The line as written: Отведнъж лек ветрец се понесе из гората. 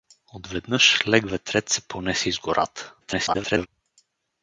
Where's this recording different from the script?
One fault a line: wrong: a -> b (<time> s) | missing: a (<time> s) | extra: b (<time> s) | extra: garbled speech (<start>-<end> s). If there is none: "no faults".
extra: garbled speech (3.0-3.7 s)